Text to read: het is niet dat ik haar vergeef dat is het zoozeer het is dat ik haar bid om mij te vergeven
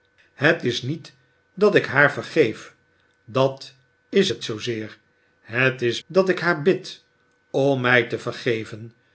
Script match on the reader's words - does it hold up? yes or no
yes